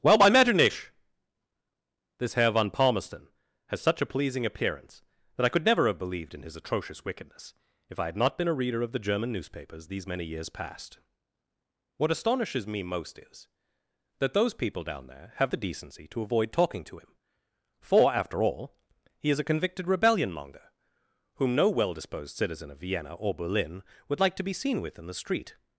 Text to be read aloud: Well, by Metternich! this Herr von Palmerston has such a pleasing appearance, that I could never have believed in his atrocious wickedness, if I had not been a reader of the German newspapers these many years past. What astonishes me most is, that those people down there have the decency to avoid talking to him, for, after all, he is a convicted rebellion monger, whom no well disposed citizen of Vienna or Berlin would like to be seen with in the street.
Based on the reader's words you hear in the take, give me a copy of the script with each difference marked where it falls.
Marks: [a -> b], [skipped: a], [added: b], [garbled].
Well, by Metternich! this Herr von Palmerston has such a pleasing appearance, that I could never have believed in his atrocious wickedness, if I had not been a reader of the German newspapers these many years past. What astonishes me most is, that those people down there have the decency to avoid talking to him, for, after all, he is a convicted rebellion monger, whom no well disposed citizen of Vienna or Berlin would like to be seen with in the street.